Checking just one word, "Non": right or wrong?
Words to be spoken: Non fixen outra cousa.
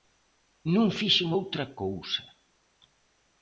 right